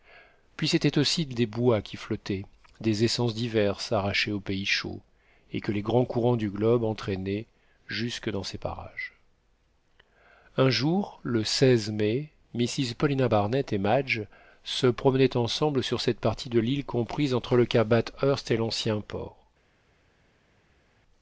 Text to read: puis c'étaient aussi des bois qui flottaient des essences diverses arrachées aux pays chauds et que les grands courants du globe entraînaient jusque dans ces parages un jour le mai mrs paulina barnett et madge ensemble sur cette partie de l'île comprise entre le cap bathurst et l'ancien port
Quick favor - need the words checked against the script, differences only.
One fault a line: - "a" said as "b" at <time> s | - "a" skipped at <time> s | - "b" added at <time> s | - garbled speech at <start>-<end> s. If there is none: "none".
- "se promenaient" added at 14.6 s